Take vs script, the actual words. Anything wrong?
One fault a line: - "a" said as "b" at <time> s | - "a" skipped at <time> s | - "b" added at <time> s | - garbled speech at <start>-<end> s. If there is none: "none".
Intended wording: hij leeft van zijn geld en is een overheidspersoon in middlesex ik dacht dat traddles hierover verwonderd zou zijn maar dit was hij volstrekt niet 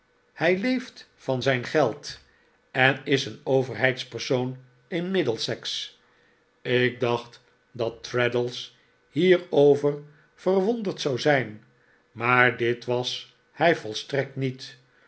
none